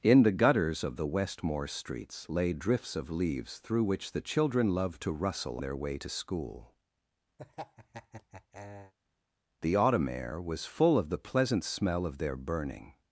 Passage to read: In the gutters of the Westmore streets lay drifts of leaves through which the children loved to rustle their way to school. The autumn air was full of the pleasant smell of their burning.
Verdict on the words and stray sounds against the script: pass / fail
fail